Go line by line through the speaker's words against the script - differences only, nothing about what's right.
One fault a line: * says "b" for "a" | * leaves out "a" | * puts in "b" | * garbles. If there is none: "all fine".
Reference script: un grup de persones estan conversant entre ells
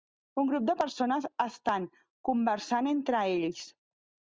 all fine